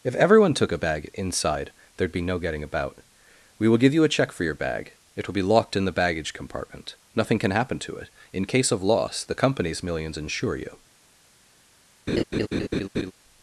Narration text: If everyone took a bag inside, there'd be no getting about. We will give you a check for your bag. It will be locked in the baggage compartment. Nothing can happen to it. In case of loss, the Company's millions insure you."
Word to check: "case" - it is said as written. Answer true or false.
true